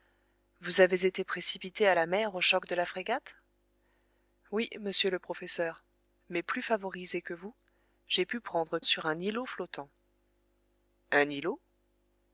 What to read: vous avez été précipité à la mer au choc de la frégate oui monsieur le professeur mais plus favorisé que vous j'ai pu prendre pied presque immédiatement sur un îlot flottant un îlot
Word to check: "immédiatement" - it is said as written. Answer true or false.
false